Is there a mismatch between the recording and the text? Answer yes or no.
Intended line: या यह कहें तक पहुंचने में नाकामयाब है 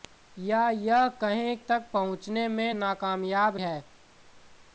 no